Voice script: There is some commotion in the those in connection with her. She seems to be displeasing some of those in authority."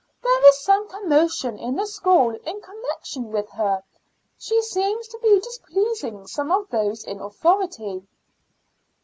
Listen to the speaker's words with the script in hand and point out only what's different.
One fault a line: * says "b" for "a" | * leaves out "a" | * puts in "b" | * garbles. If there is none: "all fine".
* says "school" for "those"